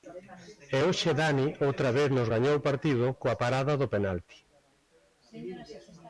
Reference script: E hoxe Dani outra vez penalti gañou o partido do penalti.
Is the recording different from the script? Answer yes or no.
yes